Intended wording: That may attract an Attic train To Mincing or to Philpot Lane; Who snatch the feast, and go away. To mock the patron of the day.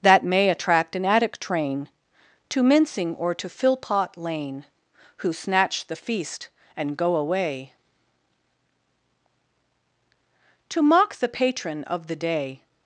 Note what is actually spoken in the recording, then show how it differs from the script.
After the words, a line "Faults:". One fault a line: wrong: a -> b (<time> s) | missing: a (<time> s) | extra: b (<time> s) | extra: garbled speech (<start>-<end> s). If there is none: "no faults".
That may attract an Attic train To Mincing or to Philpot Lane; Who snatch the feast, and go away. To mock the patron of the day.
Faults:
no faults